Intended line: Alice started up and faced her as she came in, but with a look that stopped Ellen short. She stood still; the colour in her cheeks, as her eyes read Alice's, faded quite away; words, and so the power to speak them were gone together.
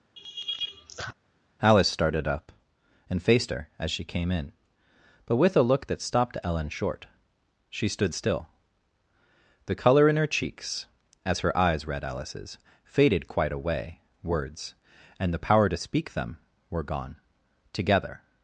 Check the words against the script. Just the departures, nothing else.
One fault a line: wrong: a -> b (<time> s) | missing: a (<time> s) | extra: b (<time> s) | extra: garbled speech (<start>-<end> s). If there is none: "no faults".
missing: so (15.3 s)